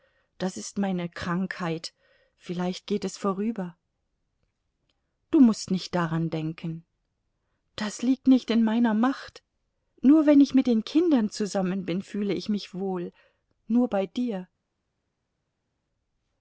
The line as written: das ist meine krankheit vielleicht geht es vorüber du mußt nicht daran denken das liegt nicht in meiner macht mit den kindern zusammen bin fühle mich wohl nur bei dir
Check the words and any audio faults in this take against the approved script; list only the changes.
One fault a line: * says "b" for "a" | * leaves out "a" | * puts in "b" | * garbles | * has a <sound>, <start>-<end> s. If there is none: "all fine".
* puts in "nur wenn ich"
* puts in "ich"